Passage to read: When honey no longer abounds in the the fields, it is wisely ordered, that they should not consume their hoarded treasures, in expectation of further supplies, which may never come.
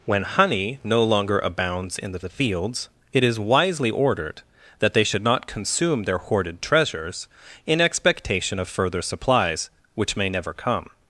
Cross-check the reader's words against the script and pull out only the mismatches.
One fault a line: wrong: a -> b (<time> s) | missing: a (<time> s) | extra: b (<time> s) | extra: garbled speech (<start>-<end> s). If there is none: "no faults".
no faults